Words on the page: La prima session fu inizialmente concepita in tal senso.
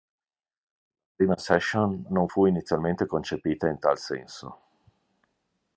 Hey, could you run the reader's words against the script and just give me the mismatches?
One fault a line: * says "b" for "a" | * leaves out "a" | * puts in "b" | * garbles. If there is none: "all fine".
* puts in "non"